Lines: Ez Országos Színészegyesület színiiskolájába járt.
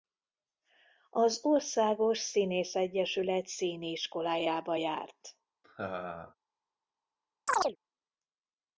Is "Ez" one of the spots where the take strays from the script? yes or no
yes